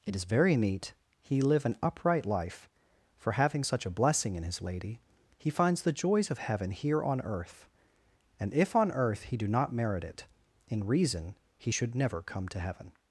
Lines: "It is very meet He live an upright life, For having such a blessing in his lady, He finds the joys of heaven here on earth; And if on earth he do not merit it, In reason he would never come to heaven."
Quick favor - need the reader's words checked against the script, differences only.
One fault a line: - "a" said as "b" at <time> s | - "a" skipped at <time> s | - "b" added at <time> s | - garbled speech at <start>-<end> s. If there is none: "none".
- "would" said as "should" at 11.7 s